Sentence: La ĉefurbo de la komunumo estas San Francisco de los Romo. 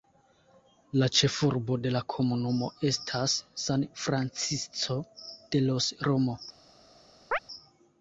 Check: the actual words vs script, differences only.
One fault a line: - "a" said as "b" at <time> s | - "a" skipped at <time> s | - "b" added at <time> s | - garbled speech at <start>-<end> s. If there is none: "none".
none